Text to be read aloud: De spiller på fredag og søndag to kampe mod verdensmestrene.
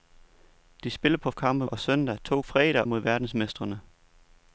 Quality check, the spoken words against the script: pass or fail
fail